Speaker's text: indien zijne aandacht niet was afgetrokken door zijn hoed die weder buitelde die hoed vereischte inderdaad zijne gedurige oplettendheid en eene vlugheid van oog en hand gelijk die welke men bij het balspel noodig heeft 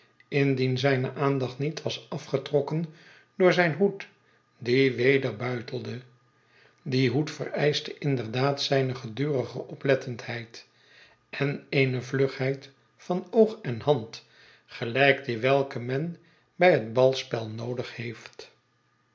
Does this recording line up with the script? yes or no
yes